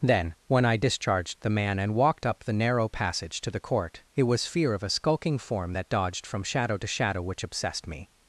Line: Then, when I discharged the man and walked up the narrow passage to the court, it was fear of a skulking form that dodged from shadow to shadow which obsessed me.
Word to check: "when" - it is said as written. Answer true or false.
true